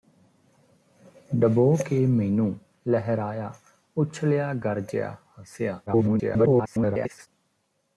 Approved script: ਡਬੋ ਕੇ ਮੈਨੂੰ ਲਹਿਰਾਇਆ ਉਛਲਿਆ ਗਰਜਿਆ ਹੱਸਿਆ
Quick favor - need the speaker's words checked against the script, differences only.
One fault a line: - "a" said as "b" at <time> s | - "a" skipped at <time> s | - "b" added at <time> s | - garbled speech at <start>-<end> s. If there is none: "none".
- garbled speech at 5.9-7.3 s